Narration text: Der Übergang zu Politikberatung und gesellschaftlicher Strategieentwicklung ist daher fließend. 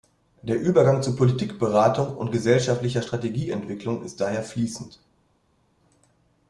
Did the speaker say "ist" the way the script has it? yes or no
yes